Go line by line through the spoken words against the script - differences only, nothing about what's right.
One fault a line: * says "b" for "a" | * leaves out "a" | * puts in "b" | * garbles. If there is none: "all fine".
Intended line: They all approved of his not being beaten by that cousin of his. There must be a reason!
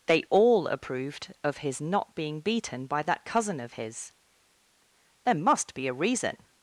all fine